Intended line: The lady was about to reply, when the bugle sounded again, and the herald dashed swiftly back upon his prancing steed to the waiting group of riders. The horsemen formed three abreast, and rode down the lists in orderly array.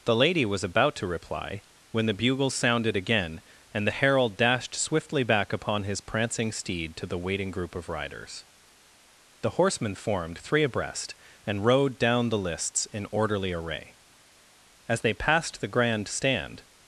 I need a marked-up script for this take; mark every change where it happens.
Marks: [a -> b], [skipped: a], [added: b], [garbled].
The lady was about to reply, when the bugle sounded again, and the herald dashed swiftly back upon his prancing steed to the waiting group of riders. The horsemen formed three abreast, and rode down the lists in orderly array. [added: As they passed the grand stand]